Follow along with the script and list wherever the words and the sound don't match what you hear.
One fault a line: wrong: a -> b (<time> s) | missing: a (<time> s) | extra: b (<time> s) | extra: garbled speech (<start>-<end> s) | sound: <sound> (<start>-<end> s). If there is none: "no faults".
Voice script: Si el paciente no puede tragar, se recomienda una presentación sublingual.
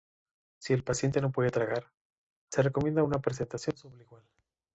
no faults